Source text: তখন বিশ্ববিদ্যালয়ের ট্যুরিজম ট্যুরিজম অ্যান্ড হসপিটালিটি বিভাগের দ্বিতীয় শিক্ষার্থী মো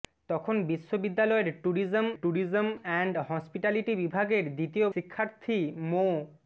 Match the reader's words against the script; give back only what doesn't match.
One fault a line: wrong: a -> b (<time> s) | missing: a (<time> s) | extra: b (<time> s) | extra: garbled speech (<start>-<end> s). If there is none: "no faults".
no faults